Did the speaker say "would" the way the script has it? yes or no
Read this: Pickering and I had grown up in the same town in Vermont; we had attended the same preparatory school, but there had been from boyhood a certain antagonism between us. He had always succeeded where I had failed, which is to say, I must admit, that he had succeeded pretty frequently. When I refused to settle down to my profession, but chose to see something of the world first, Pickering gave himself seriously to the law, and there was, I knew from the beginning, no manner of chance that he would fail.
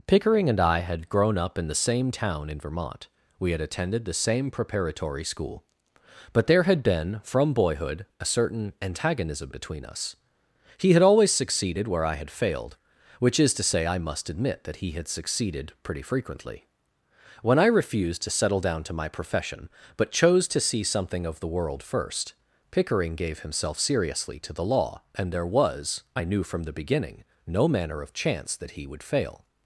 yes